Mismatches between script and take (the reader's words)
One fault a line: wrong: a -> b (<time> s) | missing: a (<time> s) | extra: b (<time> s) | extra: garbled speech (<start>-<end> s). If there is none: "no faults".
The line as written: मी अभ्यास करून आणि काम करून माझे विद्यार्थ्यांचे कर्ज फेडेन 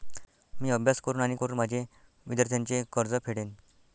missing: काम (1.4 s)